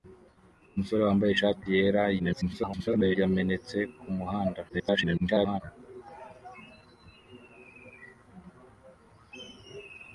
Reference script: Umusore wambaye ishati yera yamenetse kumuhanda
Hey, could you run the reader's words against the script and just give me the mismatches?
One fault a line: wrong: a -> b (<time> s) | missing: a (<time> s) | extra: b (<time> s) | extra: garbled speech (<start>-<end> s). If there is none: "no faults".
extra: garbled speech (2.2-3.2 s)
extra: garbled speech (4.7-5.6 s)